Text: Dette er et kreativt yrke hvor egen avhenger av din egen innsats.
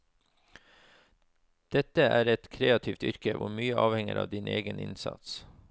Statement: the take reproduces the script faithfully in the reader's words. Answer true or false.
false